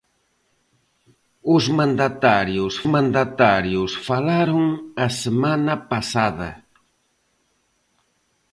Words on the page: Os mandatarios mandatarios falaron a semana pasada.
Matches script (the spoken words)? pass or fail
pass